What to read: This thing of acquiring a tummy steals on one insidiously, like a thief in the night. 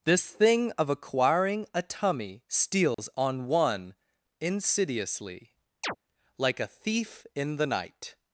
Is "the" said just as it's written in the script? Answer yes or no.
yes